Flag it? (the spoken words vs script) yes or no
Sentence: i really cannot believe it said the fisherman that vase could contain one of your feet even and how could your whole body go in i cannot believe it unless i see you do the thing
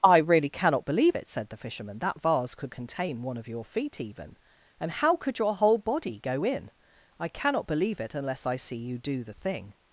no